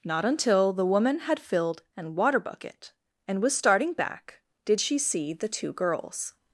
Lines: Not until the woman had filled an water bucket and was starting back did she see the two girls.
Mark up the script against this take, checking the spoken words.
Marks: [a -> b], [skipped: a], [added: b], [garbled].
Not until the woman had filled an water bucket and was starting back did she see the two girls.